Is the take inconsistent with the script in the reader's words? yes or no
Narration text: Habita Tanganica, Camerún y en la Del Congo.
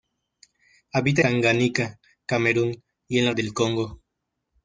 no